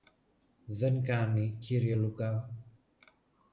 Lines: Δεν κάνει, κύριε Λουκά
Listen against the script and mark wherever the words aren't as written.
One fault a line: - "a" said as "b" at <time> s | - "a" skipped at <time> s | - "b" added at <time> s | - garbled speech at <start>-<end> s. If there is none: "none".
none